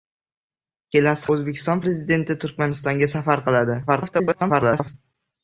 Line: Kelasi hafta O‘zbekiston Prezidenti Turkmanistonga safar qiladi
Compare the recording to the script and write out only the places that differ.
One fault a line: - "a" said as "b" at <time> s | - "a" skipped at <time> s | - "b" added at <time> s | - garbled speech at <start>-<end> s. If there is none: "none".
- "hafta" skipped at 1.3 s
- garbled speech at 3.9-4.9 s